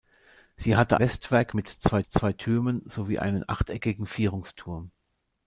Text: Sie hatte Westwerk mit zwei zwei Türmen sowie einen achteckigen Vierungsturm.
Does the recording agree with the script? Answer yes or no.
yes